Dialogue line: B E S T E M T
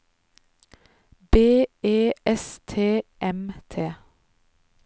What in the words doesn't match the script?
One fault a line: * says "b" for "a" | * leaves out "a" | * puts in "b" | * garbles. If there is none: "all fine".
* leaves out "E"